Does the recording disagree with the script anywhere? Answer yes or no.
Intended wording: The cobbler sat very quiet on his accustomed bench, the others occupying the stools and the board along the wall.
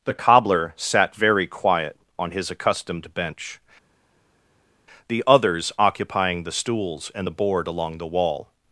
no